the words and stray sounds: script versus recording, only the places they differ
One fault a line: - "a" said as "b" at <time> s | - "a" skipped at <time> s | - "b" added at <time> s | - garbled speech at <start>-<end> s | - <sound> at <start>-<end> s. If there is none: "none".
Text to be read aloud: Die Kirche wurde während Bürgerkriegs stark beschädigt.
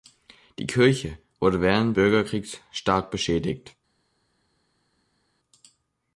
none